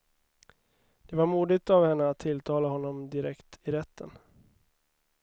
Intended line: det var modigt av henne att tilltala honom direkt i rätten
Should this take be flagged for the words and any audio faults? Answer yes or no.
no